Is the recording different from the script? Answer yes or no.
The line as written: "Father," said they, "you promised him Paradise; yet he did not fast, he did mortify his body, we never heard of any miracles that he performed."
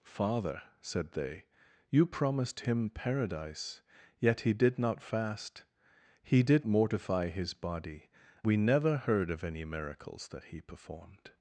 no